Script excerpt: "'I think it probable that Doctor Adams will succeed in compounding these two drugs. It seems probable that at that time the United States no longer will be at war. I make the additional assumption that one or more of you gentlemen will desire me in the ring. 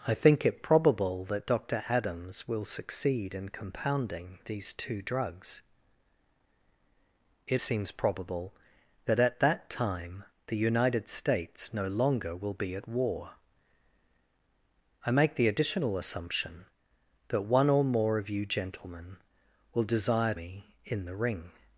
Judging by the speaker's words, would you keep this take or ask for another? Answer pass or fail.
pass